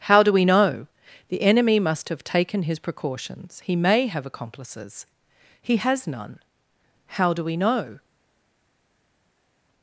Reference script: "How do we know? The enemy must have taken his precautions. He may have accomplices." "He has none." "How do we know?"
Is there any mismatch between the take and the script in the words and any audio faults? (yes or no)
no